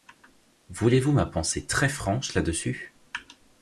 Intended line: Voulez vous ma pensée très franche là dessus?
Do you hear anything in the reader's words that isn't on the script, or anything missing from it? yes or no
no